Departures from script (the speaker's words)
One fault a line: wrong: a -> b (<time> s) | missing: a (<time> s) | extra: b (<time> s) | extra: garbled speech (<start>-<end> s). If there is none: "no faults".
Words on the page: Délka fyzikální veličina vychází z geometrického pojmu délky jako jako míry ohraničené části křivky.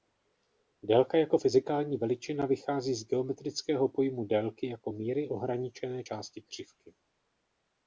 extra: jako (1.2 s)
missing: jako (4.9 s)